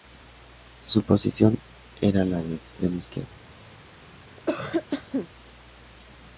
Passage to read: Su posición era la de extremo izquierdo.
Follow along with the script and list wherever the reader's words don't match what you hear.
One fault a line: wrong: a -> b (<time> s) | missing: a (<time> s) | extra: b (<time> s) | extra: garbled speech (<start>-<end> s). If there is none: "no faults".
no faults